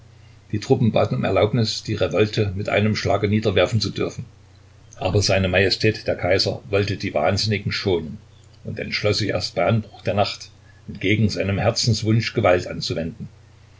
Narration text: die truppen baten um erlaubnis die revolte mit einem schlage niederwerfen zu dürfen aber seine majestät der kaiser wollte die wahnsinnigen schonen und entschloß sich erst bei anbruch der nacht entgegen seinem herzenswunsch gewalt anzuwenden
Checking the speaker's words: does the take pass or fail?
pass